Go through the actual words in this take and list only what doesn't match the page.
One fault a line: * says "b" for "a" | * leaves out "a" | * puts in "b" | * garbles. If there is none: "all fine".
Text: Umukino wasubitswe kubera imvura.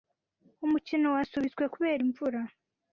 all fine